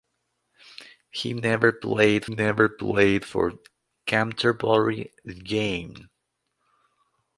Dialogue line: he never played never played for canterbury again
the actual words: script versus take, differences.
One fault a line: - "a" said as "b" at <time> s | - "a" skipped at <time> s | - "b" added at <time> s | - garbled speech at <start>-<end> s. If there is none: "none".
none